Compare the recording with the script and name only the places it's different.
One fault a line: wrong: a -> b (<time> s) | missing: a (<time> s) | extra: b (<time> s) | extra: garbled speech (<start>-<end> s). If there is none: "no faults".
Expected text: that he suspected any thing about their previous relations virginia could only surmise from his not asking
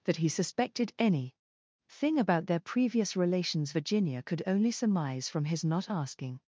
no faults